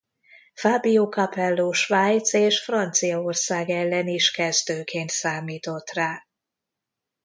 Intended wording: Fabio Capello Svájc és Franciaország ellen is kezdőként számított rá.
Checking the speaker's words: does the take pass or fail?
pass